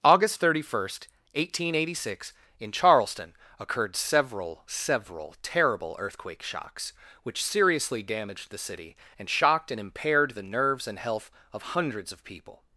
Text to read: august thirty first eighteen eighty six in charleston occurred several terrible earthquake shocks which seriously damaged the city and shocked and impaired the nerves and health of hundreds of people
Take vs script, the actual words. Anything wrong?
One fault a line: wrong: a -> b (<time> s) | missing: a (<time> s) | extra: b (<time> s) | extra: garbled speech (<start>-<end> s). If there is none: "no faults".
extra: several (4.7 s)